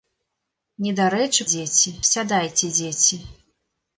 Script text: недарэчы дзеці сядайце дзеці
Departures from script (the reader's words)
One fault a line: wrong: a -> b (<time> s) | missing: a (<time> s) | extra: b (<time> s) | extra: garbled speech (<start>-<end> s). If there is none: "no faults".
no faults